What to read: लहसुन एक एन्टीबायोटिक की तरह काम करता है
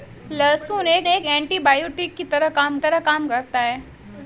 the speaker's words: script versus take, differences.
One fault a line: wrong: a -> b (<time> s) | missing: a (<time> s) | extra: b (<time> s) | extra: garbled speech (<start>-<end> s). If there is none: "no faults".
extra: एक (1.1 s)
extra: तरह काम (2.8 s)